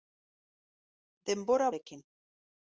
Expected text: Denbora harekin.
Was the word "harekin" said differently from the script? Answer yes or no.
no